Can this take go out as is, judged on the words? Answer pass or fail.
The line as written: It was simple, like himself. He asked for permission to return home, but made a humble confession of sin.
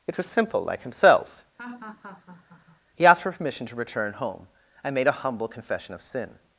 fail